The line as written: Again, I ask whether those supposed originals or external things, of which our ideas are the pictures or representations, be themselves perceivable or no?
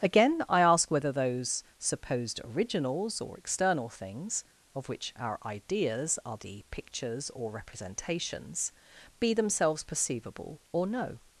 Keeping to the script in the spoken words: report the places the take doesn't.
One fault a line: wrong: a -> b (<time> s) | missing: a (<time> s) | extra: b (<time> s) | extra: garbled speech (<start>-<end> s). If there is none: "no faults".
no faults